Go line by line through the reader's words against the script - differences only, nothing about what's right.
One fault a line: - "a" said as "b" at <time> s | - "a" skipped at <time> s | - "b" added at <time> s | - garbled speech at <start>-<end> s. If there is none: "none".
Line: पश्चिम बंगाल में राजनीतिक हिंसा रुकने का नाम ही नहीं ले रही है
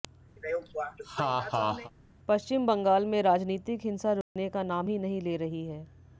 none